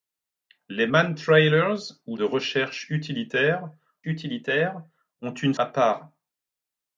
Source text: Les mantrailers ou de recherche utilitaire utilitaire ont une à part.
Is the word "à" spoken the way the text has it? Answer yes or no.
yes